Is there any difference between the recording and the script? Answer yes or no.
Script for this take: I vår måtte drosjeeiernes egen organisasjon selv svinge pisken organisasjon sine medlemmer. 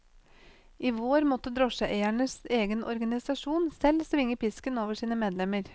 yes